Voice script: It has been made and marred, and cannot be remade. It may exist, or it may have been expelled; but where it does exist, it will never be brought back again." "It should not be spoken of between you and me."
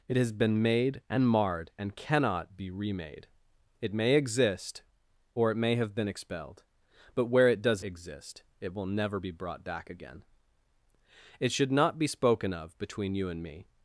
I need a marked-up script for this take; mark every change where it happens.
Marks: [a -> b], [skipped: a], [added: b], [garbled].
It has been made and marred, and cannot be remade. It may exist, or it may have been expelled; but where it does exist, it will never be brought back again." "It should not be spoken of between you and me."